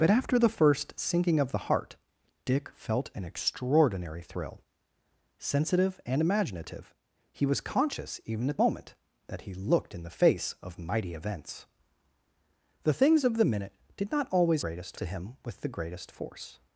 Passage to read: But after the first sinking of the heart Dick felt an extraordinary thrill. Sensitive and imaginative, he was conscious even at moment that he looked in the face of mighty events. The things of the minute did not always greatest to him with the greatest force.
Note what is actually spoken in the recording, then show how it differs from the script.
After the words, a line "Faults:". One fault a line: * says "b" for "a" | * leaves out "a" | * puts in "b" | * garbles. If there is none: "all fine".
But after the first sinking of the heart Dick felt an extraordinary thrill. Sensitive and imaginative, he was conscious even at moment that he looked in the face of mighty events. The things of the minute did not always greatest to him with the greatest force.
Faults:
all fine